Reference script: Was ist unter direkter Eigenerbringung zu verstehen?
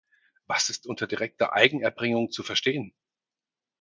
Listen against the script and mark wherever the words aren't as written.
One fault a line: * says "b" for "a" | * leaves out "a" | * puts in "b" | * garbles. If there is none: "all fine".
all fine